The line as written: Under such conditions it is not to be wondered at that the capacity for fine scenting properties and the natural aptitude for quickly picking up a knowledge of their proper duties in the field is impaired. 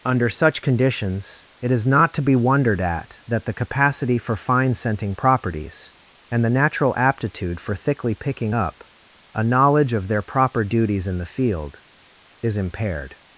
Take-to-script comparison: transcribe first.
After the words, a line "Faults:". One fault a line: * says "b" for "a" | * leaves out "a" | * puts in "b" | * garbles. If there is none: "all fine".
Under such conditions it is not to be wondered at that the capacity for fine scenting properties and the natural aptitude for thickly picking up a knowledge of their proper duties in the field is impaired.
Faults:
* says "thickly" for "quickly"